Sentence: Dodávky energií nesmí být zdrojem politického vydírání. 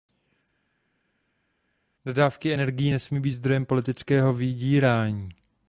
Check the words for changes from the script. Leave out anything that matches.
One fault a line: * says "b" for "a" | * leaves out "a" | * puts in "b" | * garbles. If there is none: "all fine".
all fine